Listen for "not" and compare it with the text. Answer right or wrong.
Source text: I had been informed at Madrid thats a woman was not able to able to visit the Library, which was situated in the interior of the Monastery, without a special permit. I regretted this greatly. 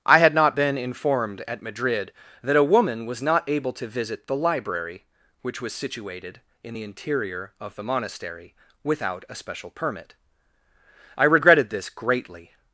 right